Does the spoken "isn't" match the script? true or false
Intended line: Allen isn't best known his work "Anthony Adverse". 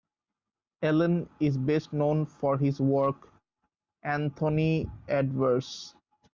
false